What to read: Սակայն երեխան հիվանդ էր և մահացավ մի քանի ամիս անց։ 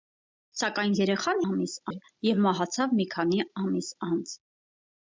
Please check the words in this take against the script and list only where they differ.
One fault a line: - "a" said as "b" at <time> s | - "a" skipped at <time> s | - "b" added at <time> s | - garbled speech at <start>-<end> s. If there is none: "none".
- "հիվանդ" said as "ամիս" at 1.5 s